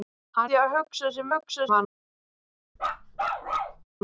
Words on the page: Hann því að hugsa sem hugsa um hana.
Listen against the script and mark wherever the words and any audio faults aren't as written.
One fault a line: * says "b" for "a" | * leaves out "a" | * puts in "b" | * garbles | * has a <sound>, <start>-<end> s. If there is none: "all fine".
* has a bark, 2.8-3.8 s